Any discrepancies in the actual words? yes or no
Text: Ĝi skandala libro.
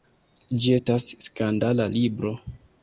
yes